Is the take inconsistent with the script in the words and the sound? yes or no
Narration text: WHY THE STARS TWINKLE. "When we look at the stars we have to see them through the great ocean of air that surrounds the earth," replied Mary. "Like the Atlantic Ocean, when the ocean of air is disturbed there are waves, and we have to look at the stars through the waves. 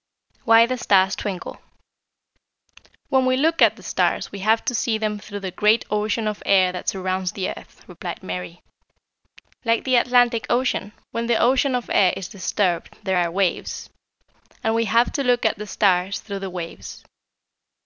no